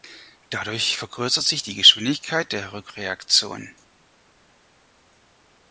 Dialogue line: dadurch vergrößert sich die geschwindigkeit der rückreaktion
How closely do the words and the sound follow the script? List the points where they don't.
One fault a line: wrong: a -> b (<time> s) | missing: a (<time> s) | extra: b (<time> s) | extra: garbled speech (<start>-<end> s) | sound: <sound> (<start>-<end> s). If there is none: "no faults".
no faults